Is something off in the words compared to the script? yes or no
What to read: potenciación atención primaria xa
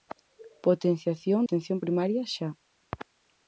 no